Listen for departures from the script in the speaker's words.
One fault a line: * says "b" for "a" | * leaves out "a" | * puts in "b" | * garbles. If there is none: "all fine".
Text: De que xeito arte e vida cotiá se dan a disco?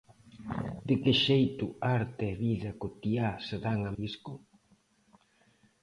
all fine